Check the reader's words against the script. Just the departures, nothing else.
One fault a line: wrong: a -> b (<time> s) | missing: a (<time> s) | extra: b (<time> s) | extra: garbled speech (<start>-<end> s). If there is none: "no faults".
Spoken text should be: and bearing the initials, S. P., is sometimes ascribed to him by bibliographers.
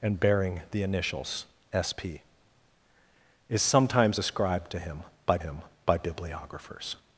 extra: him by (5.4 s)